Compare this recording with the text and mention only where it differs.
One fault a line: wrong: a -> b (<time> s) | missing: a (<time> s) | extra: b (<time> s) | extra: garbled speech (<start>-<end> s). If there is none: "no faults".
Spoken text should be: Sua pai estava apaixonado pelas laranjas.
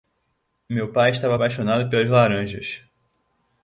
wrong: Sua -> Meu (0.7 s)